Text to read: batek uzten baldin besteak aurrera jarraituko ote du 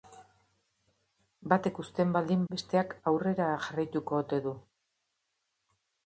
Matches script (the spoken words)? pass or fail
pass